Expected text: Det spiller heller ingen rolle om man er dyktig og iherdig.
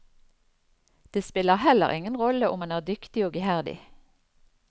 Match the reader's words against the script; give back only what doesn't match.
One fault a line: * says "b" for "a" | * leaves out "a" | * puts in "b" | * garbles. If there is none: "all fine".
all fine